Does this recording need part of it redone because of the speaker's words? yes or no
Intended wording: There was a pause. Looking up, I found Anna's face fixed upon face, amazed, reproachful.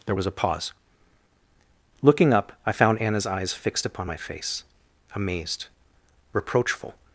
yes